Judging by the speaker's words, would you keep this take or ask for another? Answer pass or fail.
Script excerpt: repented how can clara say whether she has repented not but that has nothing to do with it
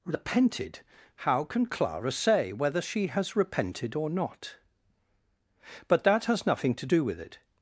fail